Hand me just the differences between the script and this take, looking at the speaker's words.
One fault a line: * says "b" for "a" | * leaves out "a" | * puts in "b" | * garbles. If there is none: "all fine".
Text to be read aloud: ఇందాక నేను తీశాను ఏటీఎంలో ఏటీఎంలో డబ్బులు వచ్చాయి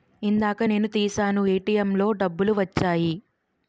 * leaves out "ఏటీఎంలో"